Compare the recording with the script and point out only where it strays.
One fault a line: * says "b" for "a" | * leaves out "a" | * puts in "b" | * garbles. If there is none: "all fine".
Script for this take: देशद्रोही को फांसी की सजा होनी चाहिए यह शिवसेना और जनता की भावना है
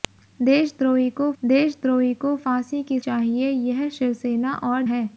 * puts in "देशद्रोही को"
* leaves out "सजा होनी"
* leaves out "जनता की भावना"